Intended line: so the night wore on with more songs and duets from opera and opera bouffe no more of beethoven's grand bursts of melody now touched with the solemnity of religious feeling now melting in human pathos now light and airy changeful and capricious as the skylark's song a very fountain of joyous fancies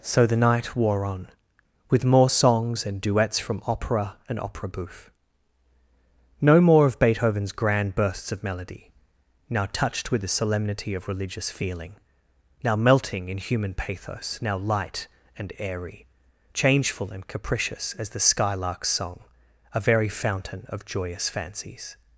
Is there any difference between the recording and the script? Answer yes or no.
no